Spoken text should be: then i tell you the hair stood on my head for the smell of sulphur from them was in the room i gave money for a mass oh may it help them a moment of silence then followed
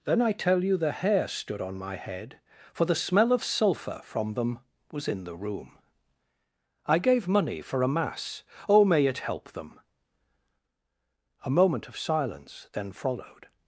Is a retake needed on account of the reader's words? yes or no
no